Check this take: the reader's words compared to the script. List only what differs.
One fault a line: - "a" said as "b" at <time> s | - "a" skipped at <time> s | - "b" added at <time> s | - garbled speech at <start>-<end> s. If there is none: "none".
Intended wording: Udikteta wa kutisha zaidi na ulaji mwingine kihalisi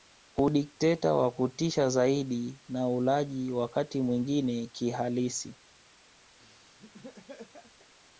- "wakati" added at 3.5 s